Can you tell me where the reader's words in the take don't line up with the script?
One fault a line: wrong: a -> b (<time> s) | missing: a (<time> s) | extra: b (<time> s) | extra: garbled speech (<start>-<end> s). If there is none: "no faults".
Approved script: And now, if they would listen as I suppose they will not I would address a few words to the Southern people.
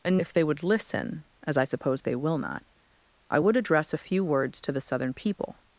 missing: now (0.2 s)